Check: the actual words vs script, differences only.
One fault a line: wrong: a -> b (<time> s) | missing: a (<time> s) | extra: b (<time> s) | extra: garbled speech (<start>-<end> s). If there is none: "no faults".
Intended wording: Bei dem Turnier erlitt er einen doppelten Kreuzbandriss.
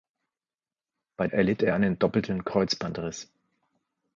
missing: dem Turnier (1.3 s)